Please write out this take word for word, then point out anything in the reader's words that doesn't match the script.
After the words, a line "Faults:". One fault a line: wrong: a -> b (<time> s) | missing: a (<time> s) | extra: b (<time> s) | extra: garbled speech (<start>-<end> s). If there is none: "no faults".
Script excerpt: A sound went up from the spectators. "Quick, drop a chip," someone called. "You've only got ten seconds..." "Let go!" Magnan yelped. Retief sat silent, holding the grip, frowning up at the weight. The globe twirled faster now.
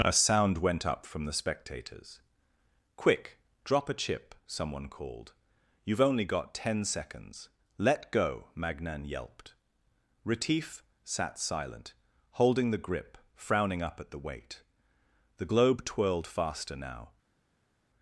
A sound went up from the spectators. "Quick, drop a chip," someone called. "You've only got ten seconds..." "Let go!" Magnan yelped. Retief sat silent, holding the grip, frowning up at the weight. The globe twirled faster now.
Faults:
no faults